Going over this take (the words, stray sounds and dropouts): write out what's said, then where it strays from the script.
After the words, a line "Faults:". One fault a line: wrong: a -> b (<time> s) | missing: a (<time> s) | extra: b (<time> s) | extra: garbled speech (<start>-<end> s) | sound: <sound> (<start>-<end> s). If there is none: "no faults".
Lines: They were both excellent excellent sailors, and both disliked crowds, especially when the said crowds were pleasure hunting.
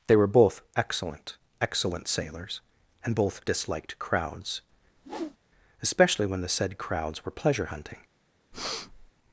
They were both excellent excellent sailors, and both disliked crowds, especially when the said crowds were pleasure hunting.
Faults:
sound: whoosh (5.0-5.4 s)
sound: breath (8.5-9.1 s)